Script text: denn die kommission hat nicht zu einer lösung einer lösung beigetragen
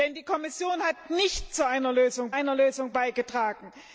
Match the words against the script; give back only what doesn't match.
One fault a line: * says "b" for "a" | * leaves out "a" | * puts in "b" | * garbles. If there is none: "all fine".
all fine